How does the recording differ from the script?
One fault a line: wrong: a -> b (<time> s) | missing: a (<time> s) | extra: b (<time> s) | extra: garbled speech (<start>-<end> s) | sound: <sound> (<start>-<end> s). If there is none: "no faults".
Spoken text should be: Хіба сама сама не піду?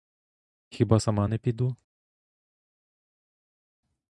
missing: сама (1.3 s)